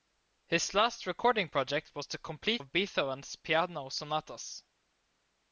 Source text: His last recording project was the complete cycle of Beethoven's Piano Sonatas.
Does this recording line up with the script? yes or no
no